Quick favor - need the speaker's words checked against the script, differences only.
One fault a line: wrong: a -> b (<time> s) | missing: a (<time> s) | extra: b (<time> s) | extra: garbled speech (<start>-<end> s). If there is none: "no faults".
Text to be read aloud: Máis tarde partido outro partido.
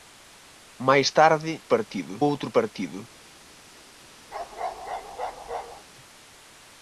no faults